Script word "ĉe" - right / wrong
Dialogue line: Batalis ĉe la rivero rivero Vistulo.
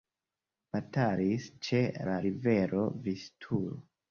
right